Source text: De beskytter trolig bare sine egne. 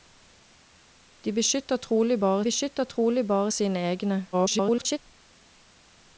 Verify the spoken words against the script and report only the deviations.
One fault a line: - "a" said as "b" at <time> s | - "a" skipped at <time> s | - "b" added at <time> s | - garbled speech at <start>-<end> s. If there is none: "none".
- "beskytter trolig bare" added at 2.4 s
- garbled speech at 4.3-5.0 s